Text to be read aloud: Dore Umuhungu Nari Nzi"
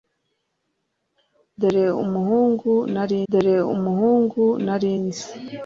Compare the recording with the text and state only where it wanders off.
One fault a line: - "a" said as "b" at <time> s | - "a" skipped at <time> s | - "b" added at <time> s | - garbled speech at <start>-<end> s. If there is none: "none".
- "dore Umuhungu Nari" added at 3.3 s